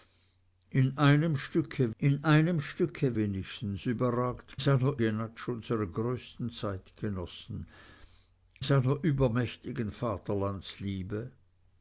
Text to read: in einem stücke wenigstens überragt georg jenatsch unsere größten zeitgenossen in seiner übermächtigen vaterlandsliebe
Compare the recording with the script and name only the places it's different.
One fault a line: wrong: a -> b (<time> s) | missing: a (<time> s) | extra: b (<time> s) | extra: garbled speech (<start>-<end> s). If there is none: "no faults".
extra: in einem stücke (2.0 s)
wrong: georg -> seiner (4.6 s)
missing: in (7.7 s)